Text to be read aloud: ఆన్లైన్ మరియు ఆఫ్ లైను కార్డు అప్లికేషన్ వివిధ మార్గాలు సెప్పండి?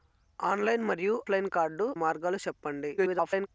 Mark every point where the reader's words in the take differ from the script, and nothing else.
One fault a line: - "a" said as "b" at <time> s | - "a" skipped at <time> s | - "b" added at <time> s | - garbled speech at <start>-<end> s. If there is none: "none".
- "ఆఫ్" skipped at 1.2 s
- "అప్లికేషన్ వివిధ" skipped at 1.9 s
- garbled speech at 3.0-3.5 s